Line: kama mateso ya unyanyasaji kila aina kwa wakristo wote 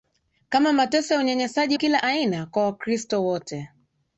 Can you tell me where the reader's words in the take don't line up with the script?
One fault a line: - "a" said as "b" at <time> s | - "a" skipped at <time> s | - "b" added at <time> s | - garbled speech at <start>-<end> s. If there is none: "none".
none